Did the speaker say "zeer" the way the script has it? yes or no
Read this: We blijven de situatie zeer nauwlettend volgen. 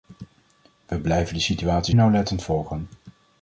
no